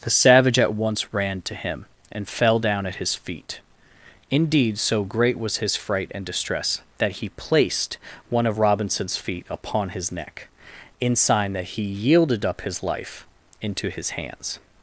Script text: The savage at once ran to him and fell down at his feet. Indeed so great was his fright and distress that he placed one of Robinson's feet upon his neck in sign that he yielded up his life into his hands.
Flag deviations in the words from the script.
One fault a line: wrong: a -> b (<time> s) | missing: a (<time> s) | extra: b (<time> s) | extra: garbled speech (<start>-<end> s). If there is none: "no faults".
no faults